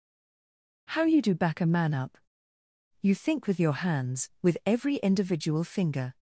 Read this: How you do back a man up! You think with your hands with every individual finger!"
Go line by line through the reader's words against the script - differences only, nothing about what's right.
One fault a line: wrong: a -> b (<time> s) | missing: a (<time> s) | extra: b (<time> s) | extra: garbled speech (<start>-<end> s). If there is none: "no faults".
no faults